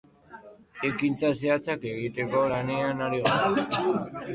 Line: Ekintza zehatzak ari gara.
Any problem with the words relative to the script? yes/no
yes